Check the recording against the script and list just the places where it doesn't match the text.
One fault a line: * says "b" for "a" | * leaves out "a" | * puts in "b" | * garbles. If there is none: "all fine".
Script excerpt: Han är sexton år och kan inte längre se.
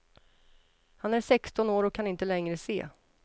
all fine